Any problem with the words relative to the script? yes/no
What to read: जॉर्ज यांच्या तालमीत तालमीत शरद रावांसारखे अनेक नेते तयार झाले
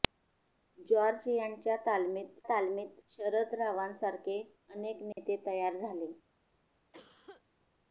no